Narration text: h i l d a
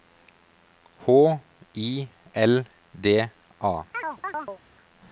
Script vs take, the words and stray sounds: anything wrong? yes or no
yes